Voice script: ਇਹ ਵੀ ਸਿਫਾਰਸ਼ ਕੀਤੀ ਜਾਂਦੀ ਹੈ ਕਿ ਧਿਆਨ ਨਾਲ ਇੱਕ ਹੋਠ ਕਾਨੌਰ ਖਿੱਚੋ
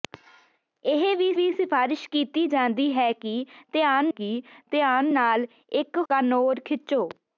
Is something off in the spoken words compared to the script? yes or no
yes